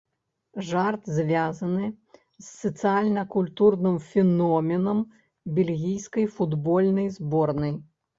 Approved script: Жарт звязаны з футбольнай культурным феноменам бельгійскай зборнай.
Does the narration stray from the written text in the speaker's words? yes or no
yes